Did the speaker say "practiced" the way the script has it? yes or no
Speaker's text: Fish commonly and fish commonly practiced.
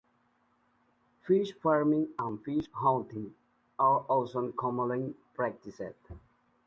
yes